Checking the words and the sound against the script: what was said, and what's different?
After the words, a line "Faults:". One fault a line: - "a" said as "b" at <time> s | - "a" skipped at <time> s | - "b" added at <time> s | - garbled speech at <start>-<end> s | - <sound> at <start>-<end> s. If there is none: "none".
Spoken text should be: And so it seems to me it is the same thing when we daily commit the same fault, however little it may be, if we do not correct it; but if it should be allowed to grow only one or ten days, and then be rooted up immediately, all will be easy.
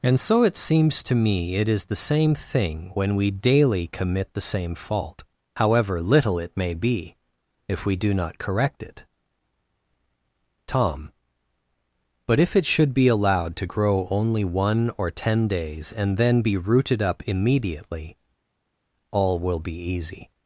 And so it seems to me it is the same thing when we daily commit the same fault, however little it may be, if we do not correct it; tom but if it should be allowed to grow only one or ten days, and then be rooted up immediately, all will be easy.
Faults:
- "tom" added at 10.7 s